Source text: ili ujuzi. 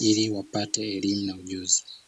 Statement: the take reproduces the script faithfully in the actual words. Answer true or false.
false